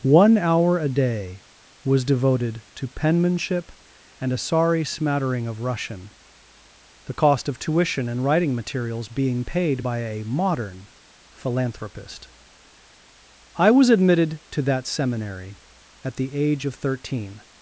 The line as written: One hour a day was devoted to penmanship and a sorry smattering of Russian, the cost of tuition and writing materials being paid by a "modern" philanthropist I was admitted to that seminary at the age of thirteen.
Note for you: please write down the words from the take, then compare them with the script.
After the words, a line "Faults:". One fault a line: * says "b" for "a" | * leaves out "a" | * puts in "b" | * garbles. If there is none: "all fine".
One hour a day was devoted to penmanship and a sorry smattering of Russian, the cost of tuition and writing materials being paid by a "modern" philanthropist I was admitted to that seminary at the age of thirteen.
Faults:
all fine